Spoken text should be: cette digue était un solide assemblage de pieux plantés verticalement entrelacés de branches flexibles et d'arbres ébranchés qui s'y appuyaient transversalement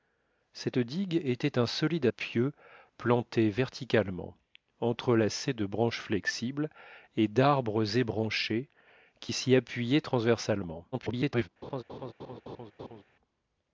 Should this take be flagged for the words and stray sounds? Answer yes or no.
yes